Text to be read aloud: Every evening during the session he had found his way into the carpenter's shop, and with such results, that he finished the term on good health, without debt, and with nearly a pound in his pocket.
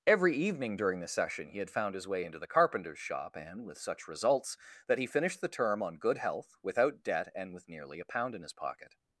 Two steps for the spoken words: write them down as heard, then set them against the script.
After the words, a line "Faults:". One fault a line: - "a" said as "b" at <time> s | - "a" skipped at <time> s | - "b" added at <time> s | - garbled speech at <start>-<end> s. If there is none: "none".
Every evening during the session he had found his way into the carpenter's shop, and with such results, that he finished the term on good health, without debt, and with nearly a pound in his pocket.
Faults:
none